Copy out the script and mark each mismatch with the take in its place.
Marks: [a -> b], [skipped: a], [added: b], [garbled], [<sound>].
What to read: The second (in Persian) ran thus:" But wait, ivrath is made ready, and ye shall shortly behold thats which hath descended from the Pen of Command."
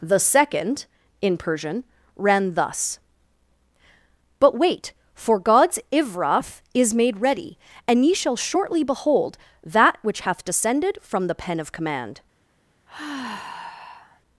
The second (in Persian) ran thus:" But wait, [added: for God's] ivrath is made ready, and ye shall shortly behold [thats -> that] which hath descended from the Pen of Command." [sigh]